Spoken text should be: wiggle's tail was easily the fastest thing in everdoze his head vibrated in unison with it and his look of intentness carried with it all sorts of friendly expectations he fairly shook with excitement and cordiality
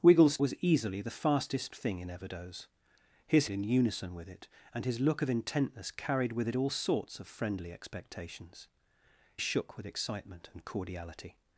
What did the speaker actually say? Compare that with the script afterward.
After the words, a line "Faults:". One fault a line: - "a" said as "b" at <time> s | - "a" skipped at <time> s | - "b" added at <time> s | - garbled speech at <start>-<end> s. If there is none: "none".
wiggle's was easily the fastest thing in everdoze his in unison with it and his look of intentness carried with it all sorts of friendly expectations shook with excitement and cordiality
Faults:
- "tail" skipped at 0.4 s
- "head vibrated" skipped at 3.5 s
- "he fairly" skipped at 8.7 s